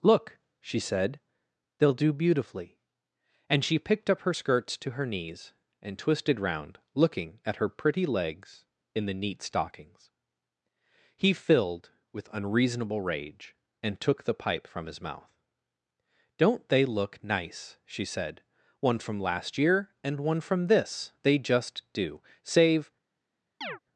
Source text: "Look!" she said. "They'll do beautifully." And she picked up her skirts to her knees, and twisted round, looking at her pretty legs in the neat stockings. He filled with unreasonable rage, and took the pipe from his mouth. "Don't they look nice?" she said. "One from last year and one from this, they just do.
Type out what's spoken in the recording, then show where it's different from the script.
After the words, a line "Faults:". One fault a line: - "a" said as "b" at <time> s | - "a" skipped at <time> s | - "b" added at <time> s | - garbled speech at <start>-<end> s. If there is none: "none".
"Look!" she said. "They'll do beautifully." And she picked up her skirts to her knees, and twisted round, looking at her pretty legs in the neat stockings. He filled with unreasonable rage, and took the pipe from his mouth. "Don't they look nice?" she said. "One from last year and one from this, they just do. Save
Faults:
- "Save" added at 22.4 s